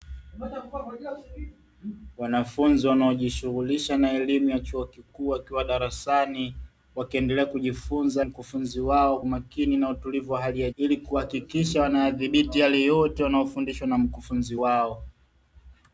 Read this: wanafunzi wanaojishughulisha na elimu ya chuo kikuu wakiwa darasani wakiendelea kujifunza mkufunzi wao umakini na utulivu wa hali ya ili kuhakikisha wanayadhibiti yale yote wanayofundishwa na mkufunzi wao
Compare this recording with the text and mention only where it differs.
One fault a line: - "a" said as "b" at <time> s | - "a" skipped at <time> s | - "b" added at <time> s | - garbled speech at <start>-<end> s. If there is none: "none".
none